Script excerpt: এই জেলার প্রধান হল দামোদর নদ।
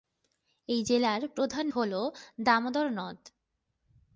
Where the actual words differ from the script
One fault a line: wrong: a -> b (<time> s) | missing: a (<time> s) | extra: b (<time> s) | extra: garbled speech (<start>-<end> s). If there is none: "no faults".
no faults